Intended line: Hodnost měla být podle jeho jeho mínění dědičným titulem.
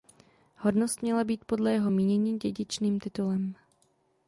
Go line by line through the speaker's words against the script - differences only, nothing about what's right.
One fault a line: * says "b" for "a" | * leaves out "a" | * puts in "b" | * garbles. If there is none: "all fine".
* leaves out "jeho"